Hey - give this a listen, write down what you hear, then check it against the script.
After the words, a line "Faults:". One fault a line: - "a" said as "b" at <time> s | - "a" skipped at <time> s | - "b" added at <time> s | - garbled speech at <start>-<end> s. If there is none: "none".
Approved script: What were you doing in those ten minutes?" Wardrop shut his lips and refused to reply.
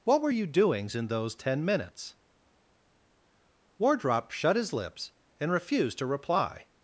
What were you doings in those ten minutes?" Wardrop shut his lips and refused to reply.
Faults:
- "doing" said as "doings" at 0.5 s